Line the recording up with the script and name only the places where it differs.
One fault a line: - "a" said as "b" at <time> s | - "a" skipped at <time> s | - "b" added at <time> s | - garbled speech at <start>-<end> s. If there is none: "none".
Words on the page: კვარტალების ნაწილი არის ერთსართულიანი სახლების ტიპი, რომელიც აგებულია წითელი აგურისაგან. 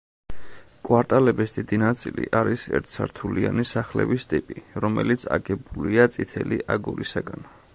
- "დიდი" added at 1.6 s